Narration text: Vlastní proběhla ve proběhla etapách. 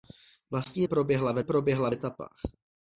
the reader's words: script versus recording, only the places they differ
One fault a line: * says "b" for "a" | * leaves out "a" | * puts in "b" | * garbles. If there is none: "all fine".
all fine